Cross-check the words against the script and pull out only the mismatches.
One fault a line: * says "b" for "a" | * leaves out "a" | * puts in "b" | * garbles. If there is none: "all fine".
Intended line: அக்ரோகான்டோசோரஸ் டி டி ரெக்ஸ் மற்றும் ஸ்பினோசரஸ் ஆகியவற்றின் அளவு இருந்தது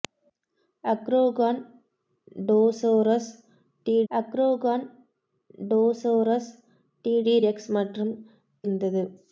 * puts in "அக்ரோகான்டோசோரஸ்"
* puts in "டி"
* leaves out "ஸ்பினோசரஸ் ஆகியவற்றின் அளவு"